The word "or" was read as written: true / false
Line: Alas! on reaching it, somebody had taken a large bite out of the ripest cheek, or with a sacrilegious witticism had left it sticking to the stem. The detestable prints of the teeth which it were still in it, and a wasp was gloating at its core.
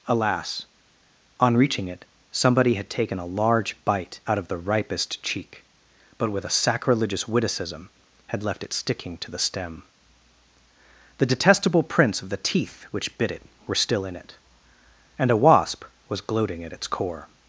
false